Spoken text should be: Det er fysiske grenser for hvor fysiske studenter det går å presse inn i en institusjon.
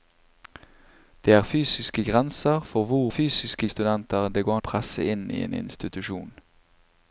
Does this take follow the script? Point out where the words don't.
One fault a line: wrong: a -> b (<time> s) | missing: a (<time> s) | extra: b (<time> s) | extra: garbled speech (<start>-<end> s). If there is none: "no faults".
no faults